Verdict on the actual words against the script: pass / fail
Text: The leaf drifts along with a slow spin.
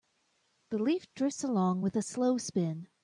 pass